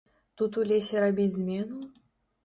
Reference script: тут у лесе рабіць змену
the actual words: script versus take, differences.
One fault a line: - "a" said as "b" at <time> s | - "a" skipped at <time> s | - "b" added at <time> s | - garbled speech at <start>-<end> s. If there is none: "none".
none